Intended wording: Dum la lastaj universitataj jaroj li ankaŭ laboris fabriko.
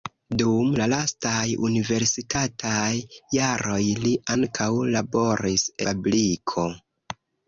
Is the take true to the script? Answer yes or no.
yes